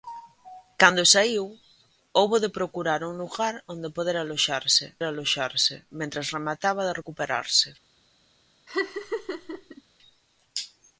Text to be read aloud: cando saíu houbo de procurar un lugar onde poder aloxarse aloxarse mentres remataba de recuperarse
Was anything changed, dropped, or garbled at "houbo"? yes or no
no